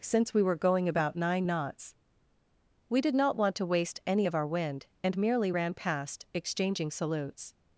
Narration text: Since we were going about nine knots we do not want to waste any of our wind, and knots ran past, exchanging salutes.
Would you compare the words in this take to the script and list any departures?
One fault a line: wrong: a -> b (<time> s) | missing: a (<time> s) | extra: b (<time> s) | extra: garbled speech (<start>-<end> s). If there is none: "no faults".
wrong: do -> did (3.0 s)
wrong: knots -> merely (5.2 s)